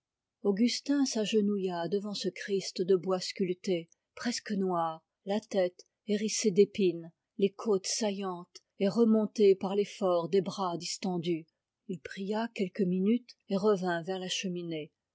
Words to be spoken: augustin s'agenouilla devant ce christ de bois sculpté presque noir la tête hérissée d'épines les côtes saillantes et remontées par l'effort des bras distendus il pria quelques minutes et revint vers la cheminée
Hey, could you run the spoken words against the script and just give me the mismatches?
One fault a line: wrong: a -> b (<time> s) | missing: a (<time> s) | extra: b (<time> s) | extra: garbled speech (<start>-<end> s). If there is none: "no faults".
no faults